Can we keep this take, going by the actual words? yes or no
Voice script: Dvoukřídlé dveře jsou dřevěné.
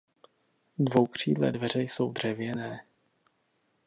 yes